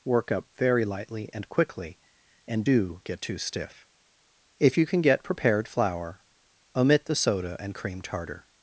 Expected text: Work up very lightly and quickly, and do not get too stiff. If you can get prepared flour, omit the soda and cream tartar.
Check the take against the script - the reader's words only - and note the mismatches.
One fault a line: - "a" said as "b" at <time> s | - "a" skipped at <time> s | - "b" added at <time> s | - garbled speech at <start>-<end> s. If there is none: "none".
- "not" skipped at 3.0 s